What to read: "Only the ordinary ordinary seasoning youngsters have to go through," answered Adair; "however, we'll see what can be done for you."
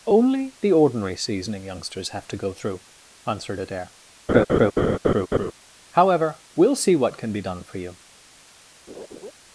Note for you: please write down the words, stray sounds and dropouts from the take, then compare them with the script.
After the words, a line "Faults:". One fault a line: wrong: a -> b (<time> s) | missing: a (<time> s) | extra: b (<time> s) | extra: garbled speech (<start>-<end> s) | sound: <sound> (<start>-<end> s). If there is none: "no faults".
"Only the ordinary seasoning youngsters have to go through," answered Adair; "however, we'll see what can be done for you."
Faults:
missing: ordinary (1.1 s)
sound: laugh (4.3-5.5 s)
sound: laugh (8.9-9.3 s)